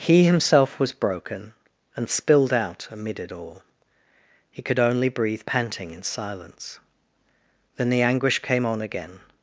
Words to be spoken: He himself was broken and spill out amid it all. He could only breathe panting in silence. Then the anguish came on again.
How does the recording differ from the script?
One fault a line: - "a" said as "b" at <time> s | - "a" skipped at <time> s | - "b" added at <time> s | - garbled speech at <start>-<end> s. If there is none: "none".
- "spill" said as "spilled" at 2.1 s